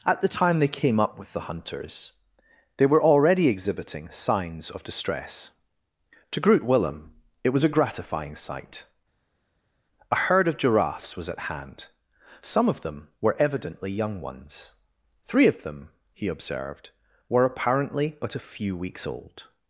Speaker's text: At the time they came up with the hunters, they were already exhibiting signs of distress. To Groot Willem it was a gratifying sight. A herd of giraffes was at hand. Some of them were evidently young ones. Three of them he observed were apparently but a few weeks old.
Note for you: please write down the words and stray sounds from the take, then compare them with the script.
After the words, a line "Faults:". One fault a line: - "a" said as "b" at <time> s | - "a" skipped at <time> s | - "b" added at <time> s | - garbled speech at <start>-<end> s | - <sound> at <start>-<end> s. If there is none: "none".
At the time they came up with the hunters, they were already exhibiting signs of distress. To Groot Willem it was a gratifying sight. A herd of giraffes was at hand. Some of them were evidently young ones. Three of them he observed were apparently but a few weeks old.
Faults:
none